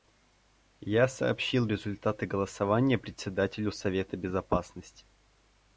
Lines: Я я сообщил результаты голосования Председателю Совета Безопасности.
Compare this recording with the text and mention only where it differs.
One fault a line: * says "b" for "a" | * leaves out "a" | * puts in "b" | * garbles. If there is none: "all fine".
* leaves out "я"